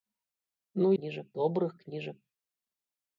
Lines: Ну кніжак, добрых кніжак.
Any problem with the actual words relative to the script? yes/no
no